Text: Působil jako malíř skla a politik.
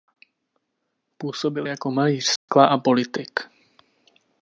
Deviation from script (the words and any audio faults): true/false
true